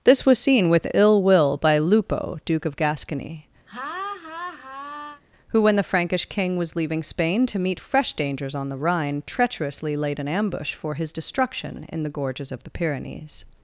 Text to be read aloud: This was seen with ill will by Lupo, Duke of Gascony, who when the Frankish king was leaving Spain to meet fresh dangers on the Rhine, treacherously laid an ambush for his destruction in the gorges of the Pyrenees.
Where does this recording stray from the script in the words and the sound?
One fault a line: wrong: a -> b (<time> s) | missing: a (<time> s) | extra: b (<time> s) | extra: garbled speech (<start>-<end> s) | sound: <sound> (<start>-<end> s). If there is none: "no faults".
sound: laugh (3.7-5.2 s)